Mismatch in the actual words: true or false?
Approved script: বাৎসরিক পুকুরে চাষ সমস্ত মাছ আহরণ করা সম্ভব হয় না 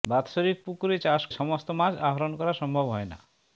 false